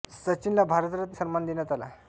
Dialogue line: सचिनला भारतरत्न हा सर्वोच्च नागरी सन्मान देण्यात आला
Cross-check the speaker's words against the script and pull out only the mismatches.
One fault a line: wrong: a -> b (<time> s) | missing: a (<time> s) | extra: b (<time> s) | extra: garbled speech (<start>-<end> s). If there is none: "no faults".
missing: हा सर्वोच्च नागरी (1.2 s)